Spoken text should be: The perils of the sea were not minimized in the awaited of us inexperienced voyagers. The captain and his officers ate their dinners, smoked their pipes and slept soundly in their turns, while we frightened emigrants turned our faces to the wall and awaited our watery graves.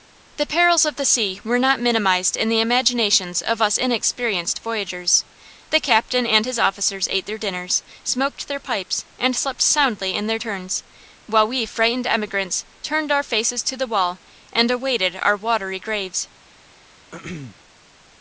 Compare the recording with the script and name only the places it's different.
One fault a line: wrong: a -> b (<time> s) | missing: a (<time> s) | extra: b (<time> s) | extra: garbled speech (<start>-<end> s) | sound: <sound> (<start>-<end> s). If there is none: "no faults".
wrong: awaited -> imaginations (2.6 s)
sound: throat clearing (17.1-17.6 s)